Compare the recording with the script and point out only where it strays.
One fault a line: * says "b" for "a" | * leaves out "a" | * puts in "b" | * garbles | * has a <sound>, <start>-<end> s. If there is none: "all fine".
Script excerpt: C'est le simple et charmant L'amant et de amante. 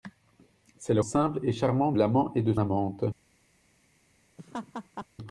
* has a laugh, 4.4-5.1 s